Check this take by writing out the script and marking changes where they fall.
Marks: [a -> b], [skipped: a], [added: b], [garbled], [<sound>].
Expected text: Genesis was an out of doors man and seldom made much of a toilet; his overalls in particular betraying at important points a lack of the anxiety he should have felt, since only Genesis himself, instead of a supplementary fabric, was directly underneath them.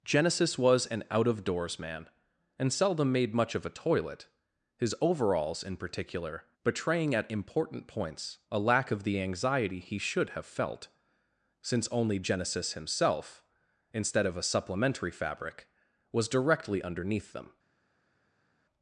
Genesis was an out of doors man and seldom made much of a toilet; his overalls in particular betraying at important points a lack of the anxiety he should have felt, since only Genesis himself, instead of a supplementary fabric, was directly underneath them.